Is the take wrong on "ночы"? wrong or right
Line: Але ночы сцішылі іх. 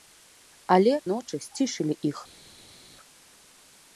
right